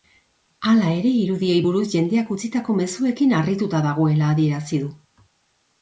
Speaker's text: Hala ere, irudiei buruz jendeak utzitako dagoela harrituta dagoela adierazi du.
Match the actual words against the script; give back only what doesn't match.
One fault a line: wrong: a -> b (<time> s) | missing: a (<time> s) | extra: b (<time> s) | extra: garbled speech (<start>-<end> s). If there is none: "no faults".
wrong: dagoela -> mezuekin (2.8 s)